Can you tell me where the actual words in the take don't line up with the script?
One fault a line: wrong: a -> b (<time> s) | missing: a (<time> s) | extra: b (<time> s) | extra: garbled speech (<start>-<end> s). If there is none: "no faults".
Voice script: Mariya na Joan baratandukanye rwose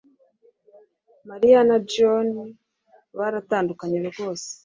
no faults